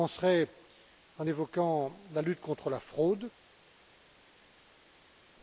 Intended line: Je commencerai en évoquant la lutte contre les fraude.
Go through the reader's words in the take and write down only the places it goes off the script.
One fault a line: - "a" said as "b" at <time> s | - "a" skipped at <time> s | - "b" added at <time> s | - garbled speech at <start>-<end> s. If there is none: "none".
- "les" said as "la" at 2.7 s